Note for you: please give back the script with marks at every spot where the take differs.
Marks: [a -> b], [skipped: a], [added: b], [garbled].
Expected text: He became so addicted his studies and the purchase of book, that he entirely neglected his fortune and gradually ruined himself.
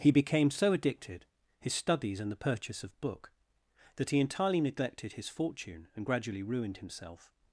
He became so addicted his studies and the purchase of book, that he entirely neglected his fortune and gradually ruined himself.